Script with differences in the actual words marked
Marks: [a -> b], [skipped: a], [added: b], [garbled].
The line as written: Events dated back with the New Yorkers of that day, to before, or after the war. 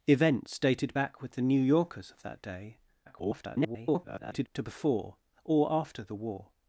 Events dated back with the New Yorkers of that day, [garbled] to before, or after the war.